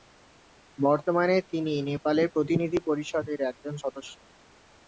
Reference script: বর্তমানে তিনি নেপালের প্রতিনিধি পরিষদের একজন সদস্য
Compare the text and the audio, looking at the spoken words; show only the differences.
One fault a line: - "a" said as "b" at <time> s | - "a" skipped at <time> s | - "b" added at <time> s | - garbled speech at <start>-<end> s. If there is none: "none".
none